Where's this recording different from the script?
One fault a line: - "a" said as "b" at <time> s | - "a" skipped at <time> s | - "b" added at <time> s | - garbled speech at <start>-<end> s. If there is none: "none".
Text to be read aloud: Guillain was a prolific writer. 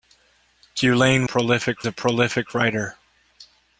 - "was" said as "prolific" at 1.2 s